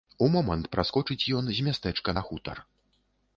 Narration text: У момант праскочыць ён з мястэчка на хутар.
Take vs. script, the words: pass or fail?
pass